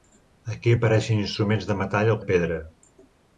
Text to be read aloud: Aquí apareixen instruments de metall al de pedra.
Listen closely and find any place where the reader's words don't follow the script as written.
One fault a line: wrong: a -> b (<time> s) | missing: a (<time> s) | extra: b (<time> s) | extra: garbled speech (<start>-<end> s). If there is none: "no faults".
no faults